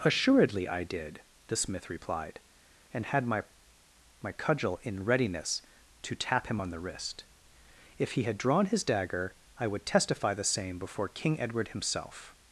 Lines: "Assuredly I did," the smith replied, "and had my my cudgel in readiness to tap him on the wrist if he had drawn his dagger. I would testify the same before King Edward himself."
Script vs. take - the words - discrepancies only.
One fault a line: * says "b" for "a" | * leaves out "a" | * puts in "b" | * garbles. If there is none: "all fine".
all fine